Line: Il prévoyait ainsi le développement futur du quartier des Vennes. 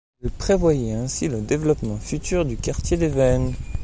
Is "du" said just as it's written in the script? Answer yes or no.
yes